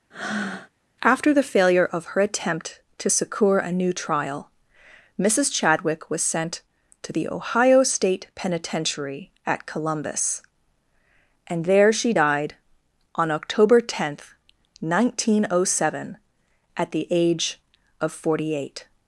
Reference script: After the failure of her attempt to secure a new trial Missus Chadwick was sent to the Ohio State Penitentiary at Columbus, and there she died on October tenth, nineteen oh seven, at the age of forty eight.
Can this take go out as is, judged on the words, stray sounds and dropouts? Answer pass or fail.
fail